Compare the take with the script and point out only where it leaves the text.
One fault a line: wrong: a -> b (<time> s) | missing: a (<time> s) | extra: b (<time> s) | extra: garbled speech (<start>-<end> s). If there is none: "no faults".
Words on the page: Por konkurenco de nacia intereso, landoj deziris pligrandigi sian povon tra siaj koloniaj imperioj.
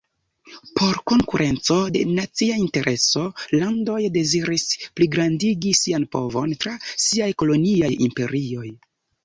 no faults